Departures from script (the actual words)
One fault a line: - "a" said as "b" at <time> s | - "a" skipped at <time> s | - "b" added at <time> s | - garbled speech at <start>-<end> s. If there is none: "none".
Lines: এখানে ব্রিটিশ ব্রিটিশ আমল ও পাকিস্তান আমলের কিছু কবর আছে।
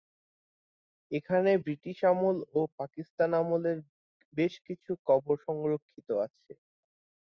- "ব্রিটিশ" skipped at 2.0 s
- "বেশ" added at 4.3 s
- "সংরক্ষিত" added at 5.4 s